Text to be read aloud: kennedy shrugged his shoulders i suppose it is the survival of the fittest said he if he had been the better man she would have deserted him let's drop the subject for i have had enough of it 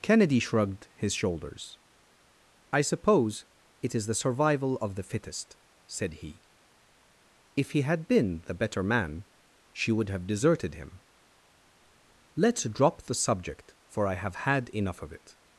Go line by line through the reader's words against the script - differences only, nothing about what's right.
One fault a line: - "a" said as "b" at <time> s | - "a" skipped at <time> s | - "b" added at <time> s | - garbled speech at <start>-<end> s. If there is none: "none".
none